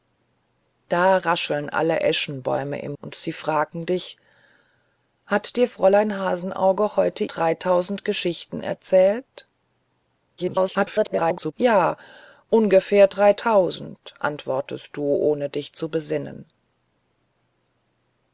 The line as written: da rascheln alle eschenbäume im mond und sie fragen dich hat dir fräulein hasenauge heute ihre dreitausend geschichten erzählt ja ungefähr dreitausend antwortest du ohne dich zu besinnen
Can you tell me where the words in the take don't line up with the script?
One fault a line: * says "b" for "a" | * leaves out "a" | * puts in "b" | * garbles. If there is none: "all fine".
* leaves out "mond"
* leaves out "ihre"
* garbles